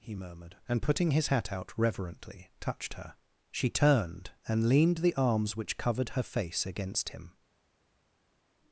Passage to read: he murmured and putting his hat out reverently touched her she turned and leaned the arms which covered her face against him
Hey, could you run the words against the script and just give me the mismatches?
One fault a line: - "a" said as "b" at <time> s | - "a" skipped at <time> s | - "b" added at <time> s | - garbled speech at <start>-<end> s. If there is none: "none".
none